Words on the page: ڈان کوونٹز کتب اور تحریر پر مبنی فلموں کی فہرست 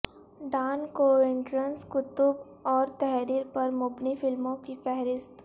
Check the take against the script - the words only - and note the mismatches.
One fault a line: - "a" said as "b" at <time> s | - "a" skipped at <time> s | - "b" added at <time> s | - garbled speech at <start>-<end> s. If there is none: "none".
none